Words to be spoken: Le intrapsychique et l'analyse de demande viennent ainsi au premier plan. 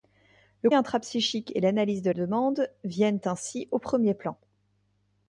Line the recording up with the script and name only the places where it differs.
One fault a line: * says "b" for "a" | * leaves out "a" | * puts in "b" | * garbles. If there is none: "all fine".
all fine